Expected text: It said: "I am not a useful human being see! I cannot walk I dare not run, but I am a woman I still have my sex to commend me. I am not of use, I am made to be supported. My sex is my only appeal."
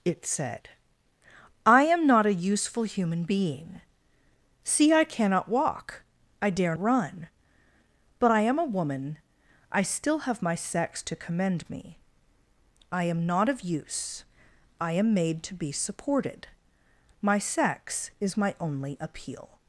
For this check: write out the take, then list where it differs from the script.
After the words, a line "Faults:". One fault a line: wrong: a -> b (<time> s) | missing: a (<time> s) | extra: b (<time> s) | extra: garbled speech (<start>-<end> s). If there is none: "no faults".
It said: "I am not a useful human being see! I cannot walk I dare run, but I am a woman I still have my sex to commend me. I am not of use, I am made to be supported. My sex is my only appeal."
Faults:
missing: not (6.8 s)